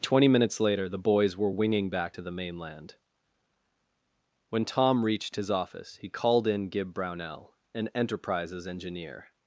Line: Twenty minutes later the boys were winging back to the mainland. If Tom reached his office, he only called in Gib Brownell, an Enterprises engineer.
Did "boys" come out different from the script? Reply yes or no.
no